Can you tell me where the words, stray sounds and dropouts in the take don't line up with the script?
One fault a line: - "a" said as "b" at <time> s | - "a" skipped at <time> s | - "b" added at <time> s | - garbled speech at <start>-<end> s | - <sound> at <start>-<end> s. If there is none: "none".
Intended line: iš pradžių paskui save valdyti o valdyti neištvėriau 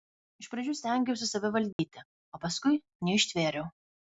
- "paskui" said as "stengiausi" at 0.8 s
- dropout at 1.7-1.8 s
- "valdyti" said as "paskui" at 2.5 s